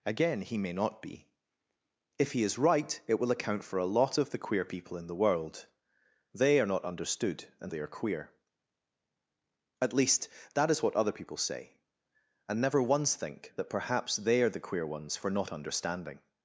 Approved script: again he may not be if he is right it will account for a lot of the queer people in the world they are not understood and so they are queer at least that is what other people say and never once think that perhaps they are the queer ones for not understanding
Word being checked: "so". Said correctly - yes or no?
no